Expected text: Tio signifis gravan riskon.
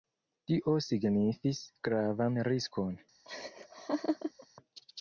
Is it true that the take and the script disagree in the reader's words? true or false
false